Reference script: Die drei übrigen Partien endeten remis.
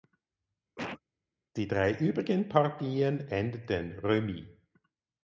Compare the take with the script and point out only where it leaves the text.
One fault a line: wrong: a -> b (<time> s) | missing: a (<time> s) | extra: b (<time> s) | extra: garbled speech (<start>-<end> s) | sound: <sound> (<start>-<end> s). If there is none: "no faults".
sound: cough (0.8-1.0 s)